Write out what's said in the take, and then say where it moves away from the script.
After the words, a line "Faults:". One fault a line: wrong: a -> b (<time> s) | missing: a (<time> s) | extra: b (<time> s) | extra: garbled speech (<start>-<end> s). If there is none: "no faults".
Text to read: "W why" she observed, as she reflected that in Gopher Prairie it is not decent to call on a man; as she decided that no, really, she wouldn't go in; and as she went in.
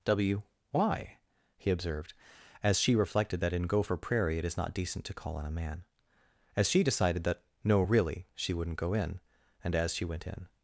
"W why" he observed, as she reflected that in Gopher Prairie it is not decent to call on a man; as she decided that no, really, she wouldn't go in; and as she went in.
Faults:
wrong: she -> he (1.6 s)